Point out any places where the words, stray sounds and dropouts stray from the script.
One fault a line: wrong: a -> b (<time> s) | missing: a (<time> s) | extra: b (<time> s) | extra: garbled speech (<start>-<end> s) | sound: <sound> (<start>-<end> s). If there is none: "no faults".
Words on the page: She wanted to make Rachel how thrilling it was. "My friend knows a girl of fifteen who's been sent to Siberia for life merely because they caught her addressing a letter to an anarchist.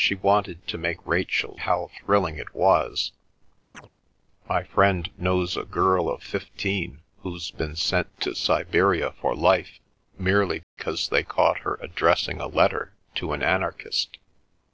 sound: chirp (3.7-3.9 s)
sound: dropout (10.6-10.8 s)